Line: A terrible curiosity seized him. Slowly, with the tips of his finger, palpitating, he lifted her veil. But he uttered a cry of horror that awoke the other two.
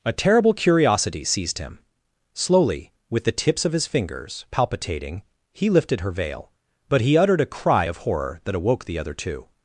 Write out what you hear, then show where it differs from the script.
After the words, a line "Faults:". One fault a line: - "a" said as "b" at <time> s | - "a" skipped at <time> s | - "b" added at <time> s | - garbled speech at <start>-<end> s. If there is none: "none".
A terrible curiosity seized him. Slowly, with the tips of his fingers, palpitating, he lifted her veil. But he uttered a cry of horror that awoke the other two.
Faults:
- "finger" said as "fingers" at 3.9 s